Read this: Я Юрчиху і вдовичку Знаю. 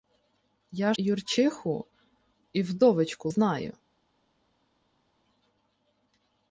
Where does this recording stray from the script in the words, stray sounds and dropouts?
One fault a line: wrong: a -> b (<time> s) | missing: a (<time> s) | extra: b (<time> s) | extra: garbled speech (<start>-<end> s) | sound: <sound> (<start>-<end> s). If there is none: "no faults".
no faults